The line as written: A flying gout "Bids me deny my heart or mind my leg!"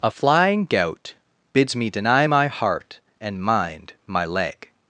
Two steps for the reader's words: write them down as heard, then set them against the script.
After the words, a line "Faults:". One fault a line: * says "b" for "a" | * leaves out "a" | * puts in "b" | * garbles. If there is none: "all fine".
A flying gout "Bids me deny my heart and mind my leg!"
Faults:
* says "and" for "or"